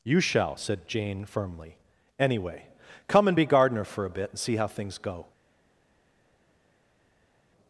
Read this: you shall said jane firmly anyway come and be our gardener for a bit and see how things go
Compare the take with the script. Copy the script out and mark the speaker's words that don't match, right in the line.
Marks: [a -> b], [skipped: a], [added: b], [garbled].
you shall said jane firmly anyway come and be [skipped: our] gardener for a bit and see how things go